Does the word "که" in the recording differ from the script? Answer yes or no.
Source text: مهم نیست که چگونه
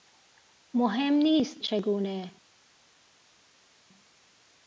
yes